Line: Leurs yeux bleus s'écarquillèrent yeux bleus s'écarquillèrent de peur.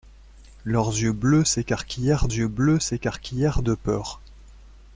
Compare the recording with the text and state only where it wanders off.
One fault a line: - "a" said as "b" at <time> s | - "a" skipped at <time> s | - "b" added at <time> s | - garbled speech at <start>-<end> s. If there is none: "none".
none